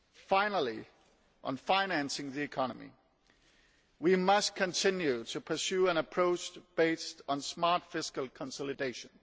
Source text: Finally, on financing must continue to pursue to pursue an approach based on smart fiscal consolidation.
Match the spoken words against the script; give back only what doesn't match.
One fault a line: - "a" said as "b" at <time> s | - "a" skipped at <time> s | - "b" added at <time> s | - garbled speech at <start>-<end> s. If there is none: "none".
- "the economy we" added at 2.3 s
- "to pursue" skipped at 5.9 s